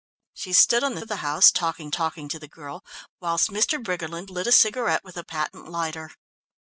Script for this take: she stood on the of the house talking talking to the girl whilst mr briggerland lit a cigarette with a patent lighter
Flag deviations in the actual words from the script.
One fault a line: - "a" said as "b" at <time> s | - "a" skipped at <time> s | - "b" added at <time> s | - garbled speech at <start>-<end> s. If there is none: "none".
none